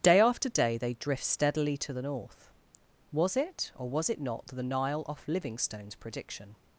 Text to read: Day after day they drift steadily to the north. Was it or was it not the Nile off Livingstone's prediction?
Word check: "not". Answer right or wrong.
right